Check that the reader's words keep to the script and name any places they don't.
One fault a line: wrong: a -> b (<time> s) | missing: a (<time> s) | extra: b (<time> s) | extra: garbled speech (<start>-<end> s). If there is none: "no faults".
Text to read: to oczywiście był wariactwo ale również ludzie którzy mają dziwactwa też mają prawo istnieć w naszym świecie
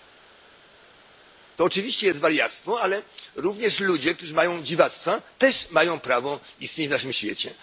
wrong: był -> jest (2.1 s)